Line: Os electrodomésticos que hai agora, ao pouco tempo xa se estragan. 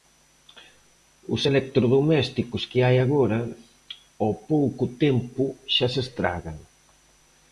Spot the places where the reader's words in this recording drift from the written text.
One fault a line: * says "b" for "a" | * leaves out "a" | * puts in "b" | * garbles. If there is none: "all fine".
all fine